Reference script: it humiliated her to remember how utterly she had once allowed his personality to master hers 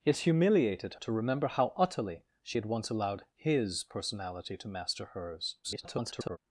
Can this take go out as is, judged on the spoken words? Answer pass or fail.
fail